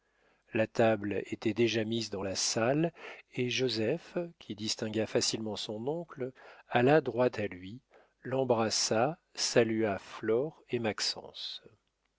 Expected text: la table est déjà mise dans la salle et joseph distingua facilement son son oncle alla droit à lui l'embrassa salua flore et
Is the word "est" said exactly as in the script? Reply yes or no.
no